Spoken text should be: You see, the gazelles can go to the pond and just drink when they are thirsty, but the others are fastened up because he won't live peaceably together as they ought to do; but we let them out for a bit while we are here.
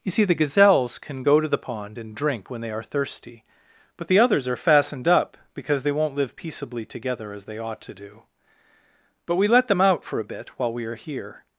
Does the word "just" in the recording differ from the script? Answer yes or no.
yes